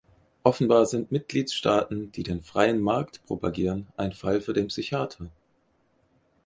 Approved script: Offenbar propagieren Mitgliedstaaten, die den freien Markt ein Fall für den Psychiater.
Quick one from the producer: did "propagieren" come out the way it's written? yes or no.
no